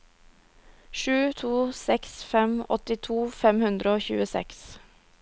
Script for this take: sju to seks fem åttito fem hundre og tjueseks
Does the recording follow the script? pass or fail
pass